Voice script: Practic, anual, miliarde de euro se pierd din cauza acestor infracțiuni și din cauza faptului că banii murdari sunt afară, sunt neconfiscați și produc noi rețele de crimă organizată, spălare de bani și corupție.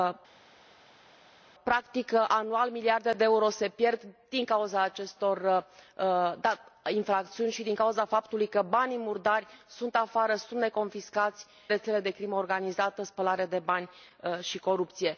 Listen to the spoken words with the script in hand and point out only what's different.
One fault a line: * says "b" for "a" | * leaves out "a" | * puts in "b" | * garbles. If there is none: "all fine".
* leaves out "și produc noi"